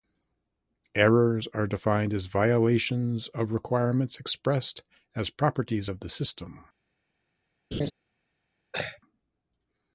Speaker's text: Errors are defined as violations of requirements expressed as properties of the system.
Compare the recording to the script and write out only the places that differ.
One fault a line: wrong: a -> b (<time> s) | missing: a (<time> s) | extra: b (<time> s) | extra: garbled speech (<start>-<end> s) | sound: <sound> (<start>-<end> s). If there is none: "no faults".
sound: laugh (7.7-7.9 s)
sound: throat clearing (8.7-9.0 s)